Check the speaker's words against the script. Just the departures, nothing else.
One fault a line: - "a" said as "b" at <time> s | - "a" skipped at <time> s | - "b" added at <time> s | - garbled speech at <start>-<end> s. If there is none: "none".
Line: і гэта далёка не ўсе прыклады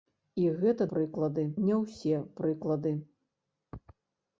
- "далёка" said as "прыклады" at 0.9 s